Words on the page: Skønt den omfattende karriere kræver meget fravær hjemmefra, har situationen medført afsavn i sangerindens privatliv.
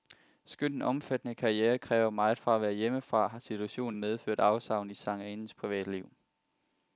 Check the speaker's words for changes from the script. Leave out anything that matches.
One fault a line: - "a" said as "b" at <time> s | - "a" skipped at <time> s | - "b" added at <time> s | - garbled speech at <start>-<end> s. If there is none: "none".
none